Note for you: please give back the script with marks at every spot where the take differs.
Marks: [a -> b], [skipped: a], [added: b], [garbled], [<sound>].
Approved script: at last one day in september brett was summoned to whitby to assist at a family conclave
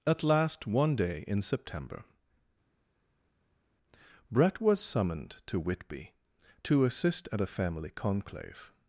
at last one day in september brett was summoned to whitby to assist at a family conclave